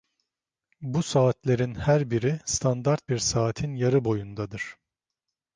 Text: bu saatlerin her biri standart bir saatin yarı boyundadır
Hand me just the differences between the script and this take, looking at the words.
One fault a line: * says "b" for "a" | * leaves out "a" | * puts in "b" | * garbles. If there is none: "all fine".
all fine